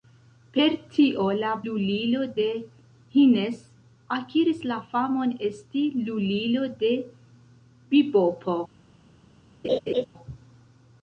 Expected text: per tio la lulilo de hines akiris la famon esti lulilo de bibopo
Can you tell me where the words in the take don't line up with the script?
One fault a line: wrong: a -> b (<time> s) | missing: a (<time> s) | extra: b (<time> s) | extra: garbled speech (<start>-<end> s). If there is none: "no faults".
no faults